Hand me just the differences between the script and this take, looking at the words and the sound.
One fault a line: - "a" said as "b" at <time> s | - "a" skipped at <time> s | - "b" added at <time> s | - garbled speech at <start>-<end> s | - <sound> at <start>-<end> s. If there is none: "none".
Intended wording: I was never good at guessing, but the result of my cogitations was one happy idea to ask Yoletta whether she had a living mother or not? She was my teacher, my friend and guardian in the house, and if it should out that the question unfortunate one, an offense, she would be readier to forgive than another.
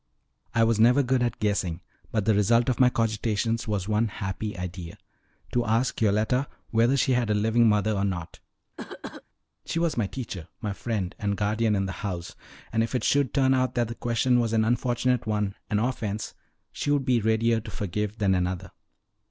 - cough at 8.8-9.2 s
- "turn" added at 13.3 s
- "was an" added at 14.4 s